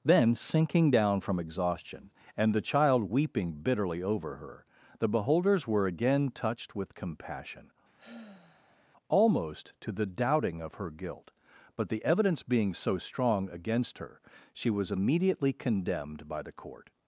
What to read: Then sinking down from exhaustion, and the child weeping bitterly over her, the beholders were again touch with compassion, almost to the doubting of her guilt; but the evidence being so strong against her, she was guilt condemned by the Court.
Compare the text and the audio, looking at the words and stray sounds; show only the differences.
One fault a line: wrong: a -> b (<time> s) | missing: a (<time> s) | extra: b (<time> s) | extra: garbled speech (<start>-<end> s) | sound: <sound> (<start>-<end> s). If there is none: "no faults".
wrong: touch -> touched (6.3 s)
sound: sigh (8.0-8.9 s)
wrong: guilt -> immediately (14.9 s)